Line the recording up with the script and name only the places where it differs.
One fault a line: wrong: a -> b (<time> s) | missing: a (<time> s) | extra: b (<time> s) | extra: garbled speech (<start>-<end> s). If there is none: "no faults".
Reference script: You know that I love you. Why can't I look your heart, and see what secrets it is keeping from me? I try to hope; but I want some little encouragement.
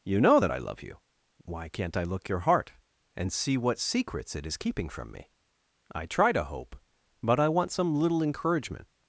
no faults